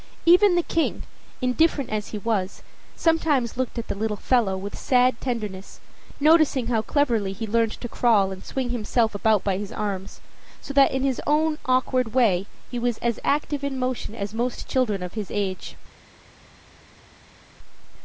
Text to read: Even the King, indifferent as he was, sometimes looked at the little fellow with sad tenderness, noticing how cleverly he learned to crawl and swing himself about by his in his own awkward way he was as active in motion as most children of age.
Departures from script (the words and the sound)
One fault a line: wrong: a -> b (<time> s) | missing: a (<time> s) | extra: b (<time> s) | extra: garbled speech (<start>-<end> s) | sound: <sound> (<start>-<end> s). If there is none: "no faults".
extra: arms so that (9.7 s)
extra: his (15.1 s)